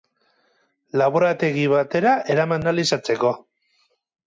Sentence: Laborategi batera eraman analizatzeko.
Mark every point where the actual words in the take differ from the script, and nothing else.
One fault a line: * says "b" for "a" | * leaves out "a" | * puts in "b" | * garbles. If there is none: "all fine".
all fine